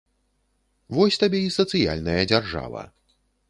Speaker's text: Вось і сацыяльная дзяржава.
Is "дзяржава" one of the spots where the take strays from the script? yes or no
no